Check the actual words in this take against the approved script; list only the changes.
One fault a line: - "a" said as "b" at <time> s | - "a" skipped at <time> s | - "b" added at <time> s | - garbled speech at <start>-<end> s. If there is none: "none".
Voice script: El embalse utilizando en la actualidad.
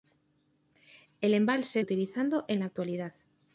none